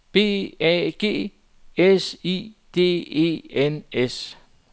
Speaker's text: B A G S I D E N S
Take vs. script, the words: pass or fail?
pass